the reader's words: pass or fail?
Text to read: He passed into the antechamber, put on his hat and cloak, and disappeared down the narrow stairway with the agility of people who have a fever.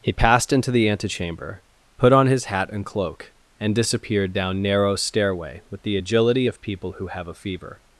fail